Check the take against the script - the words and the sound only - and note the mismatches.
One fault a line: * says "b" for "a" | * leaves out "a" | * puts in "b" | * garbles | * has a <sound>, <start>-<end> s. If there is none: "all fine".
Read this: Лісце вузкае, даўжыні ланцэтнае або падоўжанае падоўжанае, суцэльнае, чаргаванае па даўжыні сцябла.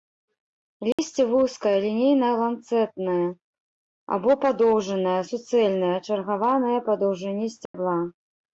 * has a dropout, 0.9-1.0 s
* says "лінейна" for "даўжыні"
* leaves out "падоўжанае"
* has a dropout, 7.7-7.7 s